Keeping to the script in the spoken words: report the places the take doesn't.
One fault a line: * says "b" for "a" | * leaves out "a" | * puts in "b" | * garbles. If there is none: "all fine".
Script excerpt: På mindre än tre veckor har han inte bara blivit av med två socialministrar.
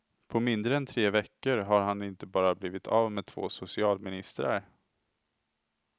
all fine